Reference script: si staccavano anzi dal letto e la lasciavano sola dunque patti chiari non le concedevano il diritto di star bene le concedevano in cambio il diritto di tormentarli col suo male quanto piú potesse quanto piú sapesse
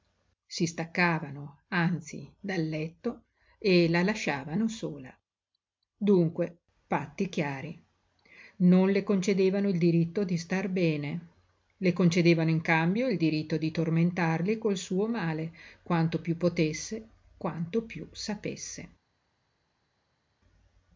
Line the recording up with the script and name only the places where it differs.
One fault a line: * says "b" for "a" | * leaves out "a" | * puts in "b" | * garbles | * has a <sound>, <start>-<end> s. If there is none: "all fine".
all fine